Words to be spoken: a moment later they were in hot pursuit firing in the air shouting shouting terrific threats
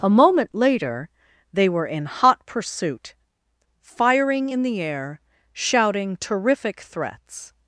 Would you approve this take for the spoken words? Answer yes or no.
no